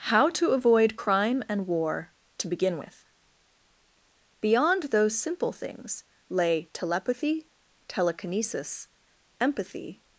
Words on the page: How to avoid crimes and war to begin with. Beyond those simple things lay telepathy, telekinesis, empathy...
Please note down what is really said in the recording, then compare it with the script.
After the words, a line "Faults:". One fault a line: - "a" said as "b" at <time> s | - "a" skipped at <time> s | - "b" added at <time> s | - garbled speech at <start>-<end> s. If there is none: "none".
How to avoid crime and war to begin with. Beyond those simple things lay telepathy, telekinesis, empathy...
Faults:
- "crimes" said as "crime" at 0.9 s